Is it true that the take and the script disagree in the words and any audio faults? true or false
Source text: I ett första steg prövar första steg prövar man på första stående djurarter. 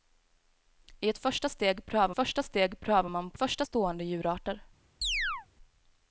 true